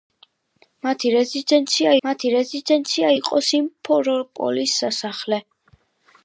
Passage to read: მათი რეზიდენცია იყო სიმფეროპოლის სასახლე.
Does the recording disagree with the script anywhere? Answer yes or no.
yes